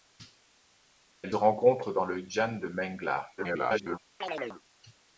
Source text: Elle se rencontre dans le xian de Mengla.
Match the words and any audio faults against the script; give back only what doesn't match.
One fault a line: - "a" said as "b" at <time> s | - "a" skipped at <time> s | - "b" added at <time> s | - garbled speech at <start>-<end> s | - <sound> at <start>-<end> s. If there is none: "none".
- "se" skipped at 1.4 s
- garbled speech at 3.4-4.0 s
- chirp at 4.2-4.6 s